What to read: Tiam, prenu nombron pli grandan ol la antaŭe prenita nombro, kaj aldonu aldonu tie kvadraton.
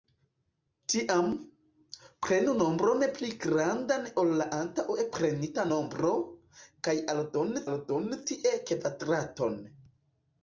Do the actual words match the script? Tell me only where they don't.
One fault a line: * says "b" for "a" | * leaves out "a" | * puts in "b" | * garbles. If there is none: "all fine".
all fine